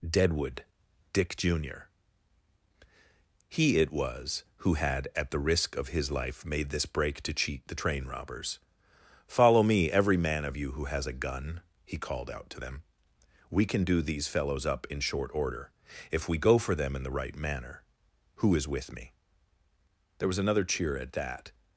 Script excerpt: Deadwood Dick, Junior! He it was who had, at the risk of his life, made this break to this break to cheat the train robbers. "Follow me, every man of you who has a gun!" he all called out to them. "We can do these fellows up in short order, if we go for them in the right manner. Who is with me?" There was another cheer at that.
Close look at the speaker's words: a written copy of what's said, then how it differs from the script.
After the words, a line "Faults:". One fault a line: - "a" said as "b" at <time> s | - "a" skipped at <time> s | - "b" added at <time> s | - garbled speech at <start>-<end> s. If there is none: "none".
Deadwood Dick, Junior! He it was who had, at the risk of his life, made this break to cheat the train robbers. "Follow me, every man of you who has a gun!" he called out to them. "We can do these fellows up in short order, if we go for them in the right manner. Who is with me?" There was another cheer at that.
Faults:
- "this break to" skipped at 7.3 s
- "all" skipped at 12.0 s